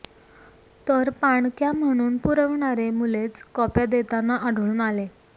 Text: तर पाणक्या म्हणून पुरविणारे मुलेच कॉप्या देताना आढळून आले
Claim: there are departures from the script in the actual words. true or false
false